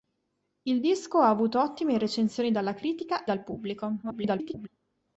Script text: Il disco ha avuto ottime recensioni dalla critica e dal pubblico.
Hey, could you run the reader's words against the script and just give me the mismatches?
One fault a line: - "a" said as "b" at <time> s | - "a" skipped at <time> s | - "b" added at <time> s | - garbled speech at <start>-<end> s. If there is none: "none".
- "e" skipped at 3.3 s
- garbled speech at 4.0-4.7 s